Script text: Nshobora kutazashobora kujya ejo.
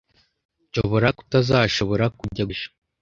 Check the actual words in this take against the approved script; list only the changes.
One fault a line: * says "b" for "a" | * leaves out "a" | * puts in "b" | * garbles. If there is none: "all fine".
all fine